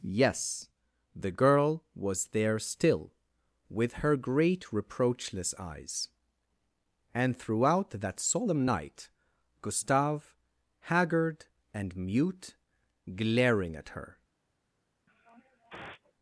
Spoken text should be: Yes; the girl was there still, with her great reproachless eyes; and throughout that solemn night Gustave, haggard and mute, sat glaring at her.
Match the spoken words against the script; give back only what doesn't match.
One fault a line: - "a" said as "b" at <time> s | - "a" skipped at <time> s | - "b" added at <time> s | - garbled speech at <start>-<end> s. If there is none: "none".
- "sat" skipped at 12.6 s